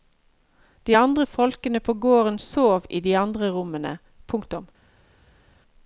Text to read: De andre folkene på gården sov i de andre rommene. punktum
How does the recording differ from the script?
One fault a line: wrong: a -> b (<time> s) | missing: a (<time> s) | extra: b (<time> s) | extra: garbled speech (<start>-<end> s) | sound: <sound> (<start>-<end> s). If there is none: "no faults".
no faults